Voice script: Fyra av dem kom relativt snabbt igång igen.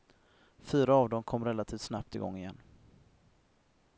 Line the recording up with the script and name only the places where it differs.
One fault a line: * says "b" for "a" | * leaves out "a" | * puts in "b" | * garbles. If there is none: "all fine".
all fine